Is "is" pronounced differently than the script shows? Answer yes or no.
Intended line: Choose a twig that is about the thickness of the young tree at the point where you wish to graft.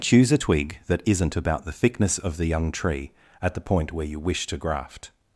yes